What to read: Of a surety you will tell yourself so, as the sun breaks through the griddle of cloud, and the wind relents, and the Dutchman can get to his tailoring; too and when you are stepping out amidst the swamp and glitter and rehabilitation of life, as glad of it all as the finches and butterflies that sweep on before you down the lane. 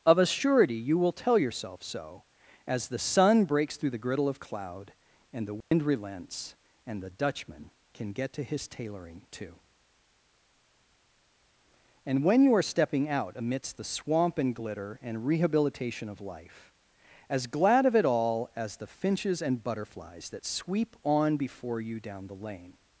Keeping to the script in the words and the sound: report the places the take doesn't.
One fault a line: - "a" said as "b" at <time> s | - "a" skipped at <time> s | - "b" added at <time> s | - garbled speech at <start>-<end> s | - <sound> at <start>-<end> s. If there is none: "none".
- dropout at 5.6-5.7 s